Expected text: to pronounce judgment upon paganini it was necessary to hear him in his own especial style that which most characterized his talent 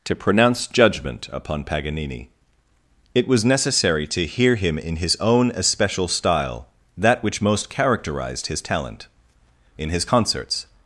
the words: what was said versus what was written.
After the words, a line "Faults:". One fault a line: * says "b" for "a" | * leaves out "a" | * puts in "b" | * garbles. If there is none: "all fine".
to pronounce judgment upon paganini it was necessary to hear him in his own especial style that which most characterized his talent in his concerts
Faults:
* puts in "in his concerts"